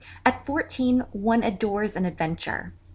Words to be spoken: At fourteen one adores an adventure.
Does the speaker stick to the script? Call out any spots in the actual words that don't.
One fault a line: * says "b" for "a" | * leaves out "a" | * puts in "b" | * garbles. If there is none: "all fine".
all fine